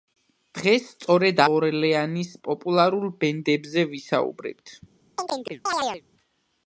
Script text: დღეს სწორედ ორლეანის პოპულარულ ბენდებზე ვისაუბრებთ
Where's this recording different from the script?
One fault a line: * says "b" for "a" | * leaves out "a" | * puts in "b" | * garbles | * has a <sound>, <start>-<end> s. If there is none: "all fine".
* has a chirp, 5.2-6.0 s